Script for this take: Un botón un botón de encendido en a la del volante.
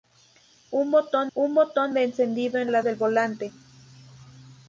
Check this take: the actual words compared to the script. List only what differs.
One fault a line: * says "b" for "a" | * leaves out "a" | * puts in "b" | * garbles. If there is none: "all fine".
all fine